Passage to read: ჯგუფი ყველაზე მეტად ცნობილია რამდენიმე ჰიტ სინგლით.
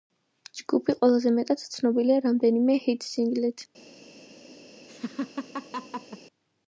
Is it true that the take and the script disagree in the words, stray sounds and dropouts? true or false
true